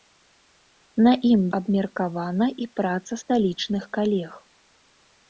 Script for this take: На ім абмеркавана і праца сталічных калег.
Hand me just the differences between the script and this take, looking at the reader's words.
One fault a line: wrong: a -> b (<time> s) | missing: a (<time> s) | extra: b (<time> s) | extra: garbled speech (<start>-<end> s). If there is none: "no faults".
no faults